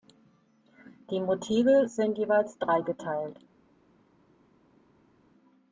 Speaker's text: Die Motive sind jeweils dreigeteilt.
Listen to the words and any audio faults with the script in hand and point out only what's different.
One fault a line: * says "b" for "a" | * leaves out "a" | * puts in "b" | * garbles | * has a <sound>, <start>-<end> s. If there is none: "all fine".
all fine